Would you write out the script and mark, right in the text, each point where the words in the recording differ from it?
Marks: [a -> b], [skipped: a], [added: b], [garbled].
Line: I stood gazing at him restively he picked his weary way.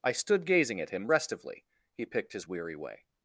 I stood gazing at him restively he picked his weary way.